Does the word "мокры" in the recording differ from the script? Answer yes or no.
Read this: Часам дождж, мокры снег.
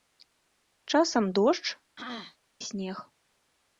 yes